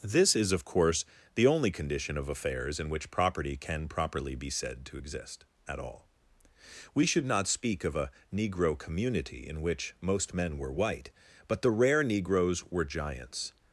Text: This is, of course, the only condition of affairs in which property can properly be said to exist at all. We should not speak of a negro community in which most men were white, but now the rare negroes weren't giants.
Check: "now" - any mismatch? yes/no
yes